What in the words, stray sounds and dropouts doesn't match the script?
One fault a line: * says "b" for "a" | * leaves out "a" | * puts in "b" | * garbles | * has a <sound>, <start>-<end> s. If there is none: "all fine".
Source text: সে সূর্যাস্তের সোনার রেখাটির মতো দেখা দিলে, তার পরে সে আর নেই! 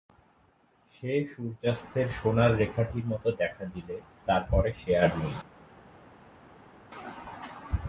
all fine